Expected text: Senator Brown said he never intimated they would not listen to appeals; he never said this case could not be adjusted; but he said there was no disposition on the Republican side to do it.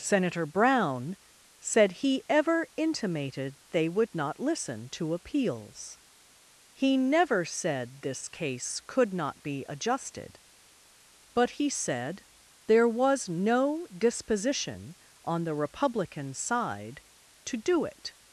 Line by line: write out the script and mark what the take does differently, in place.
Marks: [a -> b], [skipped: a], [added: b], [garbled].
Senator Brown said he [never -> ever] intimated they would not listen to appeals; he never said this case could not be adjusted; but he said there was no disposition on the Republican side to do it.